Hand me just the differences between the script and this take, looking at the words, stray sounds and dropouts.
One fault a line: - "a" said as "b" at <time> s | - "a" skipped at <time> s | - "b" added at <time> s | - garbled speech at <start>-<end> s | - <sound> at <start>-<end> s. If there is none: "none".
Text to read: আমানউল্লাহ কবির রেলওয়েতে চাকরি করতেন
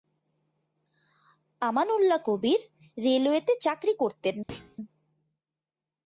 - thud at 4.5-4.8 s